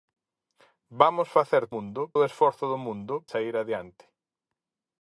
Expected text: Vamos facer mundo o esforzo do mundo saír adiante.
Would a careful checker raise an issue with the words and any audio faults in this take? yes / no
no